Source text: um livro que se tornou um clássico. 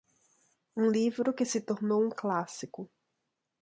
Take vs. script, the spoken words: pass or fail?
pass